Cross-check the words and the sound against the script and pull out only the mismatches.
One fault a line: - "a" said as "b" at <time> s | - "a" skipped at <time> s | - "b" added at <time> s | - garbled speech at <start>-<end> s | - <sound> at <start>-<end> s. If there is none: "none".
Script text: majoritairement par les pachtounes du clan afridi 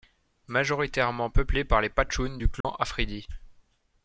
- "peuplée" added at 1.3 s
- dropout at 2.6-2.6 s